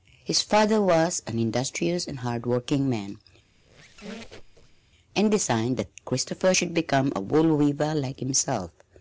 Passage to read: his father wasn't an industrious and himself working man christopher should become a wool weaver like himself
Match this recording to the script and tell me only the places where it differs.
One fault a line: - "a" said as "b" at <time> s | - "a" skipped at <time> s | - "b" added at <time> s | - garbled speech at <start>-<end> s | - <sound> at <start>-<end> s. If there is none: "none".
- "wasn't" said as "was" at 0.8 s
- "himself" said as "hard" at 2.2 s
- squeak at 3.5-4.8 s
- "and designed that" added at 5.1 s